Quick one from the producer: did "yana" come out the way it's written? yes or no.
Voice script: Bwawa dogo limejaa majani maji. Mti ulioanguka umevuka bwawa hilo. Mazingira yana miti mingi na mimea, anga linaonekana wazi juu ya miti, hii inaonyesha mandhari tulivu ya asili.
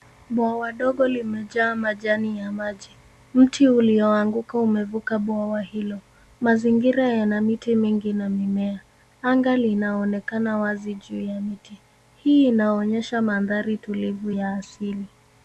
yes